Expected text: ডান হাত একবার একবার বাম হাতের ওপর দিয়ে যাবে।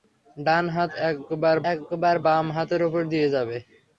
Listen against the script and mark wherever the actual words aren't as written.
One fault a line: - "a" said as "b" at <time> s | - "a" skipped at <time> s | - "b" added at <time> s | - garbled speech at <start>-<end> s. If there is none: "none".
none